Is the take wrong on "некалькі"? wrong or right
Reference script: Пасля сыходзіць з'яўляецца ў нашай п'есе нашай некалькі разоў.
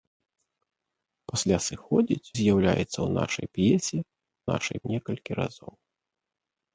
right